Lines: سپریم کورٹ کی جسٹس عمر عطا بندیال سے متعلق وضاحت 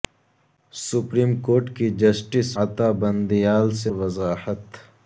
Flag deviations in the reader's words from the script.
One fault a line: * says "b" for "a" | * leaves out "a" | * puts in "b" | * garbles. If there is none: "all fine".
* leaves out "عمر"
* leaves out "متعلق"